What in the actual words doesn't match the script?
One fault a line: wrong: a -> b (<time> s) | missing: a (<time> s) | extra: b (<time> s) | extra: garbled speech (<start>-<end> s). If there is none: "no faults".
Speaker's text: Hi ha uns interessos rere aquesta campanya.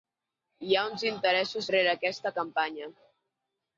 no faults